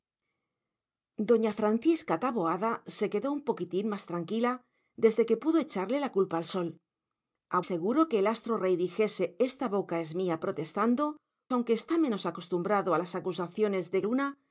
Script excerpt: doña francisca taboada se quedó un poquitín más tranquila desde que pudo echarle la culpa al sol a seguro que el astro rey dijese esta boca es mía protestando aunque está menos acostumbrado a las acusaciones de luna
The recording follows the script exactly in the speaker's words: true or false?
true